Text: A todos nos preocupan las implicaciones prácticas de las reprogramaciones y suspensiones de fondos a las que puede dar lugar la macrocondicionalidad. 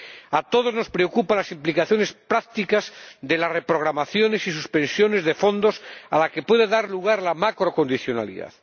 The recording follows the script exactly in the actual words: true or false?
true